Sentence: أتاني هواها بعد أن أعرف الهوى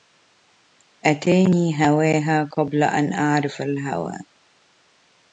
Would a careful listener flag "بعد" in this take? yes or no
yes